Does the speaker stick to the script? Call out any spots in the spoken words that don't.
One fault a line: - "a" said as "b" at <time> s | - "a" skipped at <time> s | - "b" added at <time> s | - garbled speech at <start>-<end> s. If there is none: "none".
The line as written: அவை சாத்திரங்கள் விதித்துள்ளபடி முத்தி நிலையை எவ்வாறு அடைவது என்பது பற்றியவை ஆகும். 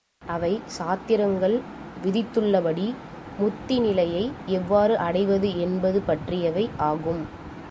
none